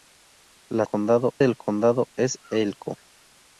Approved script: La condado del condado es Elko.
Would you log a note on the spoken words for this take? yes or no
no